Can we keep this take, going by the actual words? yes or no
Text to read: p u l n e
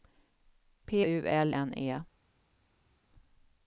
yes